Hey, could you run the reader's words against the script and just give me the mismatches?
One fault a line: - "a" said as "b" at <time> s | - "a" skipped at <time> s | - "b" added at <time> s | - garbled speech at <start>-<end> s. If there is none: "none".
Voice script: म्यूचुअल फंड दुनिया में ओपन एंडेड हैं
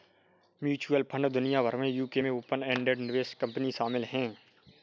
- "भर" added at 1.6 s
- "यूके में" added at 1.9 s
- "निवेश कंपनी शामिल" added at 3.0 s